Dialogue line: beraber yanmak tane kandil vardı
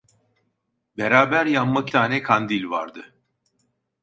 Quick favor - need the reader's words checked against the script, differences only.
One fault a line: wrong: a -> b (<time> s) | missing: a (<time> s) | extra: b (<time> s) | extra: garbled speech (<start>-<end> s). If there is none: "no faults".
no faults